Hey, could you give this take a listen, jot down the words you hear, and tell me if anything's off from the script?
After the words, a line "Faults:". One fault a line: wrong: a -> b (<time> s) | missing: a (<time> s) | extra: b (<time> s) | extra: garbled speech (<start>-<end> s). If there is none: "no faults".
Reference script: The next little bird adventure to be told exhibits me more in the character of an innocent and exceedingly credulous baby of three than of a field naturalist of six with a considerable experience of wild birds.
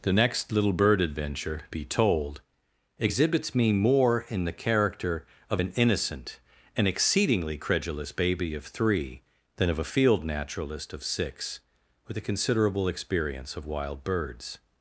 The next little bird adventure be told exhibits me more in the character of an innocent and exceedingly credulous baby of three than of a field naturalist of six with a considerable experience of wild birds.
Faults:
missing: to (1.6 s)